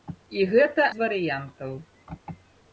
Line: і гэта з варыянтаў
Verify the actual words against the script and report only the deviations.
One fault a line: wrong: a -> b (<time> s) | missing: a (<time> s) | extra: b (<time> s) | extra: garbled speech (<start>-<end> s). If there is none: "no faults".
no faults